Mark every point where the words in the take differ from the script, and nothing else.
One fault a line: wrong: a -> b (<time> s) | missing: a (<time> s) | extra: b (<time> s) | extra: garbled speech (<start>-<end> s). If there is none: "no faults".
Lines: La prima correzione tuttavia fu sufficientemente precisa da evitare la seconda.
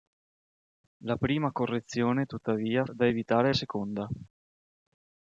missing: fu sufficientemente precisa (2.9 s)
missing: la (3.5 s)